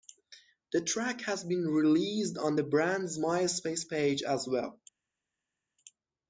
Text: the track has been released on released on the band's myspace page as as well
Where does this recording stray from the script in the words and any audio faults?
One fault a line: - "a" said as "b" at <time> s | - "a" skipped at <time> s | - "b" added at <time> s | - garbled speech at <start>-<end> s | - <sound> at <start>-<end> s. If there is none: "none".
- "released on" skipped at 2.6 s
- "as" skipped at 4.5 s